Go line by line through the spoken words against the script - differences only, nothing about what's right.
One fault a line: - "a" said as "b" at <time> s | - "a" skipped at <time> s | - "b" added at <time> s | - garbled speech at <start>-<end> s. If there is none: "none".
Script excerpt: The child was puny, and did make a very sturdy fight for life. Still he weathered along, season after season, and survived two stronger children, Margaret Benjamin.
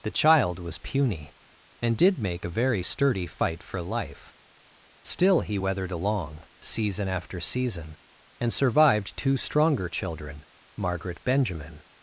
none